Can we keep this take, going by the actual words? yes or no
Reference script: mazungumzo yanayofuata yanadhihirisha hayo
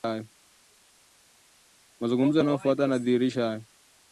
yes